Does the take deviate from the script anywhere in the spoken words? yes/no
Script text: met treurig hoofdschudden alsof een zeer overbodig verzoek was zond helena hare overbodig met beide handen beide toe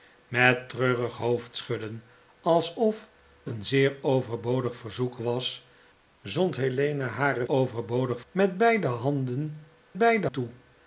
no